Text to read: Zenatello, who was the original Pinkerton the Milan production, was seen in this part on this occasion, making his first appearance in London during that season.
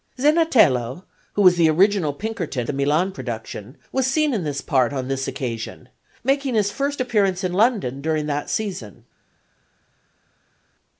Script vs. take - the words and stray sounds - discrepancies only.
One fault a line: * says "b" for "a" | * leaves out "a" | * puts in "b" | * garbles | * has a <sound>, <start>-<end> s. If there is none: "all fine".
all fine